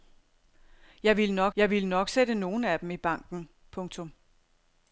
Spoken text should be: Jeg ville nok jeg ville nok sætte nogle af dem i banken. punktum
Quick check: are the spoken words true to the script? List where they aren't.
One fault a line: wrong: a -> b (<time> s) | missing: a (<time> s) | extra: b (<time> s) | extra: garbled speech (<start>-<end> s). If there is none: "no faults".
no faults